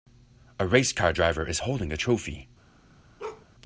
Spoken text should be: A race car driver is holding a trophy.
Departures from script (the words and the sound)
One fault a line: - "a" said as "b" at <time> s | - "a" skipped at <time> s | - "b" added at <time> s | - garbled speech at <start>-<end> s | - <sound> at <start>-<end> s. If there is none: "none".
- bark at 3.2-3.5 s